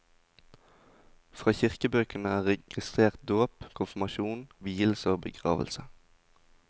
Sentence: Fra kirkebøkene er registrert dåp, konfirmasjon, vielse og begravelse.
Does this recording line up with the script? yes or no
yes